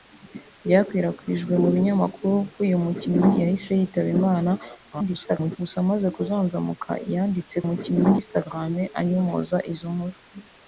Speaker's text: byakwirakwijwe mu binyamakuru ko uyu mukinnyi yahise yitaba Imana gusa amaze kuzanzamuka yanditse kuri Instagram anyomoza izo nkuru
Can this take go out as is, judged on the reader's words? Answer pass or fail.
fail